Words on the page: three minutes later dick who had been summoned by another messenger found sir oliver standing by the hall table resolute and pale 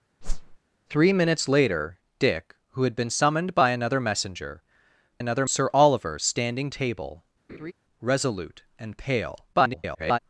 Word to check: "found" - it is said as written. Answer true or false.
false